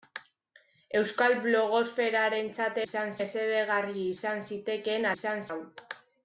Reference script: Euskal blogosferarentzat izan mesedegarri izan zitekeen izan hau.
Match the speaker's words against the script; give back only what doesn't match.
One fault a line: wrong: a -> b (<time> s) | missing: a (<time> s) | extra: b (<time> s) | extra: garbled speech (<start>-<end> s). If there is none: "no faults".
no faults